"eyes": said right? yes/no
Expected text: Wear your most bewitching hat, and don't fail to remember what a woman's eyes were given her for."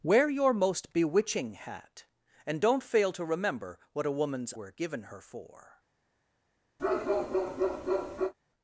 no